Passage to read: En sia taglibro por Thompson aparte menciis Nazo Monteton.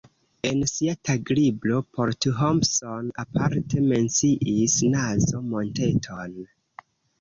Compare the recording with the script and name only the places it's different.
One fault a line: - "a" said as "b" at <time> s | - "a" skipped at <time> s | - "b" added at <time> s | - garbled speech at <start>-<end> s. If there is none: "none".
none